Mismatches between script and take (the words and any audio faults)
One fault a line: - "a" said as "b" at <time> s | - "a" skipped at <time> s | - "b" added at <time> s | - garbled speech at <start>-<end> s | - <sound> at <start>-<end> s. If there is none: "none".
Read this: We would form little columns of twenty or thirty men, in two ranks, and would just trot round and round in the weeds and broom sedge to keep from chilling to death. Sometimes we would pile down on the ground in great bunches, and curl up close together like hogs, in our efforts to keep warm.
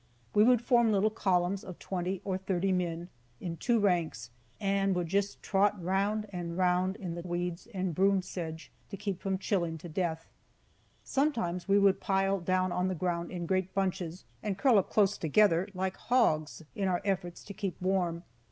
none